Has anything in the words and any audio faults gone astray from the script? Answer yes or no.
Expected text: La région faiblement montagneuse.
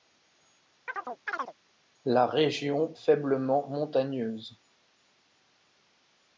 yes